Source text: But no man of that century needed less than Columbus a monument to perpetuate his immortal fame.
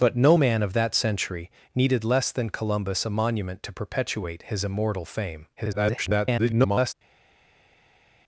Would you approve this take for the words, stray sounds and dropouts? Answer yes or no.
no